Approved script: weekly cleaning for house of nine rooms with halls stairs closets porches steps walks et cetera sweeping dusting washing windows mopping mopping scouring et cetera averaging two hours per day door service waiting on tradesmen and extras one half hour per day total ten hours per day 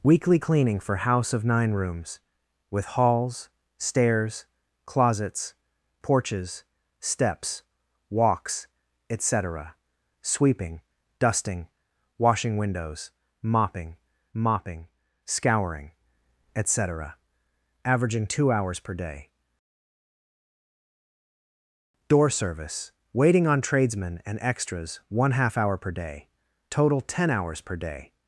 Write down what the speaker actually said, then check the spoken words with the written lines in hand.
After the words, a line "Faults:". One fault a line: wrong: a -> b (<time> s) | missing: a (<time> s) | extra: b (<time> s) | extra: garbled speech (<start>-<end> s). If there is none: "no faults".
weekly cleaning for house of nine rooms with halls stairs closets porches steps walks et cetera sweeping dusting washing windows mopping mopping scouring et cetera averaging two hours per day door service waiting on tradesmen and extras one half hour per day total ten hours per day
Faults:
no faults